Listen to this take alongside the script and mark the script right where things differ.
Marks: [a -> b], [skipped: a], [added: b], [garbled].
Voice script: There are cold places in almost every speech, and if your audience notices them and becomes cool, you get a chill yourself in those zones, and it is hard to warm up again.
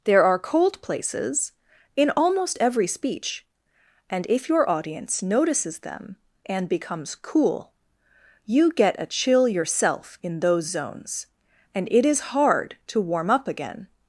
There are cold places in almost every speech, and if your audience notices them and becomes cool, you get a chill yourself in those zones, and it is hard to warm up again.